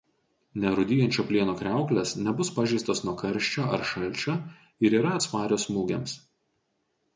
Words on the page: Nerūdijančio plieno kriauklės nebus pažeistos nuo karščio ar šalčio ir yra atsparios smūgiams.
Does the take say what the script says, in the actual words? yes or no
yes